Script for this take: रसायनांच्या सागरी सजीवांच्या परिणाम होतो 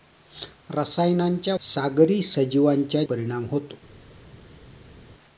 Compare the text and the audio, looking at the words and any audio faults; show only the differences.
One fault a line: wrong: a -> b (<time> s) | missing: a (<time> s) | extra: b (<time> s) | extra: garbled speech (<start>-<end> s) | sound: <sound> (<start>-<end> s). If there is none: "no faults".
no faults